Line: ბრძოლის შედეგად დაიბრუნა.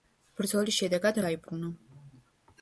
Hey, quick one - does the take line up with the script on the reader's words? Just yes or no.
yes